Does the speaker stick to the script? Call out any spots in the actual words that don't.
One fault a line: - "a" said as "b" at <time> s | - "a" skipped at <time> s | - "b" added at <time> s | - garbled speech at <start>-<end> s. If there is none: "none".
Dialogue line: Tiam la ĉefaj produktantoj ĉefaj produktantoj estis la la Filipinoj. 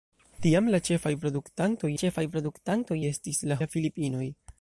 none